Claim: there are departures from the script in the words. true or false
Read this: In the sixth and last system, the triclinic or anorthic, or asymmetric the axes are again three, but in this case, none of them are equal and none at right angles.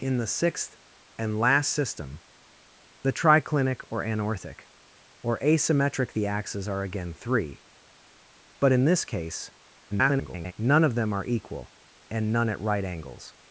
true